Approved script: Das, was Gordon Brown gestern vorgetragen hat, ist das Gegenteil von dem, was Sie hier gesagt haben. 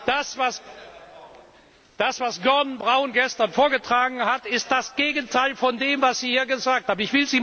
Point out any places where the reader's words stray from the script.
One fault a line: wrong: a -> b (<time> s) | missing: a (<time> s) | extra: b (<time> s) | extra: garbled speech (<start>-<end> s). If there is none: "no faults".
no faults